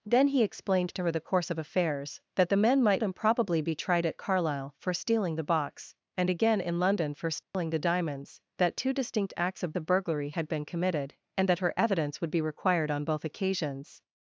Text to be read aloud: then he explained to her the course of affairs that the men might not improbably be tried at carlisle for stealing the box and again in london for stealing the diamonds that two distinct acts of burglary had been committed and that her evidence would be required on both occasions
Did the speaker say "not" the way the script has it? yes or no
no